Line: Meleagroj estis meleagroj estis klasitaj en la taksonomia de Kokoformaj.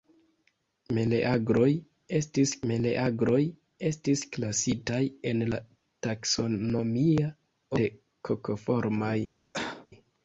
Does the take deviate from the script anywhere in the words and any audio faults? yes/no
yes